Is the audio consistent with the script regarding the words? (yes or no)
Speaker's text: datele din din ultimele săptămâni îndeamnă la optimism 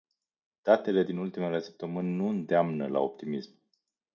no